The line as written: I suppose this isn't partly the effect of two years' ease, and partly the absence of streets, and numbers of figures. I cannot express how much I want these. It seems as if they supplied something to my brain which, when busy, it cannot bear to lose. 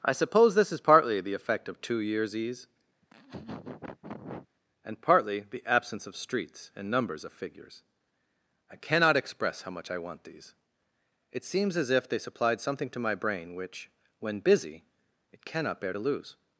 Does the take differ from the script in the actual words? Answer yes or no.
yes